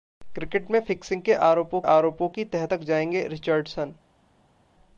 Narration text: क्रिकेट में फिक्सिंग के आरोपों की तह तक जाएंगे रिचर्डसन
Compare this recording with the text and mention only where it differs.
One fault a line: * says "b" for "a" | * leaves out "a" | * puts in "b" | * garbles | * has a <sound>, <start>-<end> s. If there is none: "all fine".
* puts in "आरोपों"